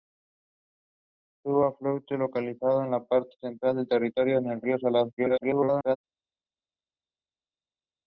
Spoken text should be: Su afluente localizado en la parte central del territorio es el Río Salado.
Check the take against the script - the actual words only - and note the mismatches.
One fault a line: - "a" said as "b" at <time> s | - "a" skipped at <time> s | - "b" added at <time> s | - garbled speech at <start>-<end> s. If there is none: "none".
- garbled speech at 5.2-6.0 s